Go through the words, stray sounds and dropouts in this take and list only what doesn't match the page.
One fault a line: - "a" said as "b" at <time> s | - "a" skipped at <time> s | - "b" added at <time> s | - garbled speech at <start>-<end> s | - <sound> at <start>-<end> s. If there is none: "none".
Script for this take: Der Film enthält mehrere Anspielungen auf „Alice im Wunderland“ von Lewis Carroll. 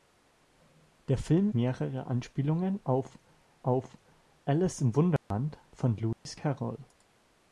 - "enthält" skipped at 1.5 s
- "auf" added at 3.6 s
- dropout at 5.2-5.3 s
- dropout at 6.1-6.3 s